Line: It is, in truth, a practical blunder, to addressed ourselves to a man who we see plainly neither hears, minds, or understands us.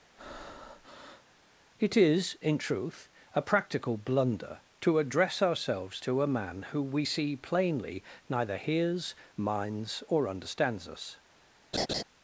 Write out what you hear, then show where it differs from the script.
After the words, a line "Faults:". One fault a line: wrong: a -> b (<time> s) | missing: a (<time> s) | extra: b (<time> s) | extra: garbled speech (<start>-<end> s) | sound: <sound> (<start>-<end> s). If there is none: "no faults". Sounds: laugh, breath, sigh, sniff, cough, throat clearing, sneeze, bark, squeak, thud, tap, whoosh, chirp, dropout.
It is, in truth, a practical blunder, to address ourselves to a man who we see plainly neither hears, minds, or understands us.
Faults:
sound: breath (0.2-1.3 s)
wrong: addressed -> address (5.0 s)
sound: laugh (11.7-12.0 s)